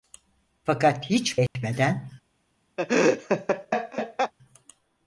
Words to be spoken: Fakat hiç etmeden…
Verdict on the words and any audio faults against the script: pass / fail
fail